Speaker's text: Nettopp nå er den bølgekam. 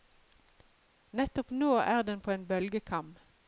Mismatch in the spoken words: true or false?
true